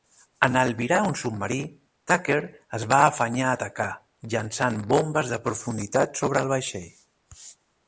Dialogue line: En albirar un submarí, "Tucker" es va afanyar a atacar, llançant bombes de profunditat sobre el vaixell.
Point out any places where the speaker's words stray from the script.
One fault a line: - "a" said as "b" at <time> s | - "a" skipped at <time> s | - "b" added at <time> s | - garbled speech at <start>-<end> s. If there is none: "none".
none